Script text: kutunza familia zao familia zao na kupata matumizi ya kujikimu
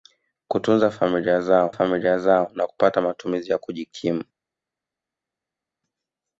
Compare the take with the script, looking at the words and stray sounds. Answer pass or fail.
pass